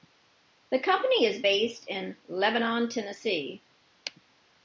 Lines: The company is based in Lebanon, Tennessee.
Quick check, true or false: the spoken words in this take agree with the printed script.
true